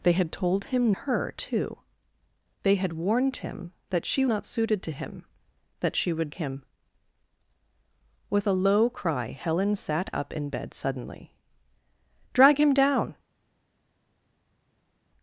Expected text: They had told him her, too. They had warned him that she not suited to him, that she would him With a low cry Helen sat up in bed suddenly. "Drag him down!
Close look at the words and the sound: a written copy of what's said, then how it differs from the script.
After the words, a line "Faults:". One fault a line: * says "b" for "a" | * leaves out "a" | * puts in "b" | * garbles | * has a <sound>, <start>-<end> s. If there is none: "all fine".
They had told him her, too. They had warned him that she not suited to him, that she would him With a low cry Helen sat up in bed suddenly. "Drag him down!
Faults:
all fine